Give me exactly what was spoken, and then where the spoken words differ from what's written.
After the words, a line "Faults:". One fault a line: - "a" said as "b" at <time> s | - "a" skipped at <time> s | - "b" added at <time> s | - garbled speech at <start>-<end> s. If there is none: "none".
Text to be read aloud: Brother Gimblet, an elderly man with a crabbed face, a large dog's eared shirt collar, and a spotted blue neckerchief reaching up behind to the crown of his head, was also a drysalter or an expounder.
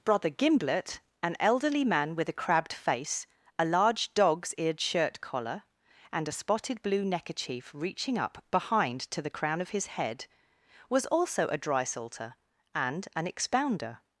Brother Gimblet, an elderly man with a crabbed face, a large dog's eared shirt collar, and a spotted blue neckerchief reaching up behind to the crown of his head, was also a drysalter and an expounder.
Faults:
- "or" said as "and" at 12.7 s